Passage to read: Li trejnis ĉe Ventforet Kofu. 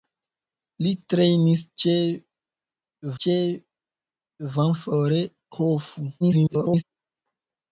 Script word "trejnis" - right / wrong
right